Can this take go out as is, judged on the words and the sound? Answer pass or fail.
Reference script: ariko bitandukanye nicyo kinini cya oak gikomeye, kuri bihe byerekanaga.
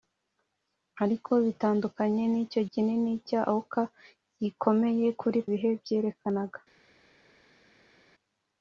pass